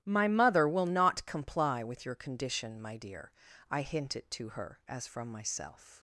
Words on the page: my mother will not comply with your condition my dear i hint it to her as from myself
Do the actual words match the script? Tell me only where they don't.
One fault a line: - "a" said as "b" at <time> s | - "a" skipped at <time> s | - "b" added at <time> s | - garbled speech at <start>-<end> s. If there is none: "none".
none